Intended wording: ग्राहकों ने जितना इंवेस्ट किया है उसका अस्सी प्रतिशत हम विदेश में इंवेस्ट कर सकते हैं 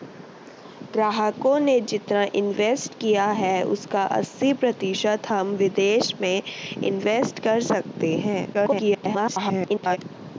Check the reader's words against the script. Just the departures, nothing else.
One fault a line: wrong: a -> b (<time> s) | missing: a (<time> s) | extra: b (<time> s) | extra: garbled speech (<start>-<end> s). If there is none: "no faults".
extra: garbled speech (8.5-10.0 s)